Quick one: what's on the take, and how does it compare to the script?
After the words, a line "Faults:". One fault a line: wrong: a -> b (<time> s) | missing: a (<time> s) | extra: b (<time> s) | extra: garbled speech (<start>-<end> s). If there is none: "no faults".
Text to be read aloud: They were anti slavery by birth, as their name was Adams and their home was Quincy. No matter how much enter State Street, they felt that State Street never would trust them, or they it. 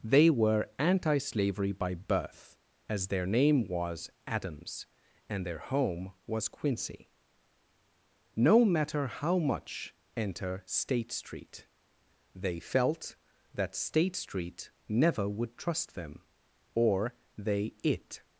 They were anti slavery by birth, as their name was Adams and their home was Quincy. No matter how much enter State Street, they felt that State Street never would trust them, or they it.
Faults:
no faults